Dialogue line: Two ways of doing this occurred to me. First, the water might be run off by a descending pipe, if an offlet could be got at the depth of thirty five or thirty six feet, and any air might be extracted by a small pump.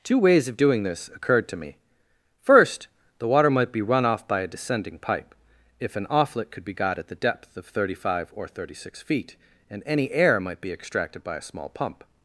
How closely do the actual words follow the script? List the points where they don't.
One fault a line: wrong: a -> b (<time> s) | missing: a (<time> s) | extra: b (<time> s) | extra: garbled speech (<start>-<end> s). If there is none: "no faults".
no faults